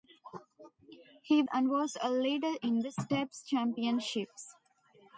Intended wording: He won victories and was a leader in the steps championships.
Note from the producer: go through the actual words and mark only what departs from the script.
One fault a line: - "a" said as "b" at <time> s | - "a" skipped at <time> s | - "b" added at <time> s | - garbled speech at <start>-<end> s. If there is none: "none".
- "won victories" skipped at 1.4 s